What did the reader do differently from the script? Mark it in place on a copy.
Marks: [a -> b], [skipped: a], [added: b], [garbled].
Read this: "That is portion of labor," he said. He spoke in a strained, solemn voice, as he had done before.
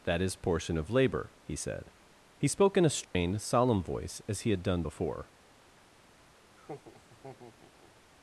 "That is portion of labor," he said. He spoke in a strained, solemn voice, as he had done before.